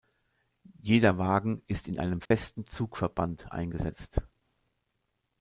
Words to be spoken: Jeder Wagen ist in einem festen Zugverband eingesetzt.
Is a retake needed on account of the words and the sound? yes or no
yes